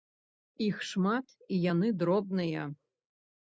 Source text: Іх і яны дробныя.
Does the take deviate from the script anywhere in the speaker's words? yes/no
yes